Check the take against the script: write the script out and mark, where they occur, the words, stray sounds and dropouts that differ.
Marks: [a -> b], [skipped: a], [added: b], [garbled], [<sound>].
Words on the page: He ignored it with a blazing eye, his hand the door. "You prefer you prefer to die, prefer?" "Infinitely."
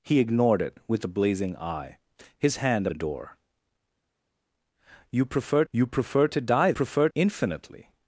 He ignored it with a blazing eye, his hand the door. "You prefer you prefer to die, prefer?" "Infinitely."